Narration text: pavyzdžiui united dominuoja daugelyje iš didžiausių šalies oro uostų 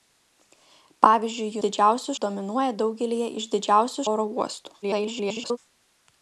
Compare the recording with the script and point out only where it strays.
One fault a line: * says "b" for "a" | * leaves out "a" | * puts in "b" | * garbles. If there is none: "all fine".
* says "didžiausių" for "united"
* leaves out "šalies"
* garbles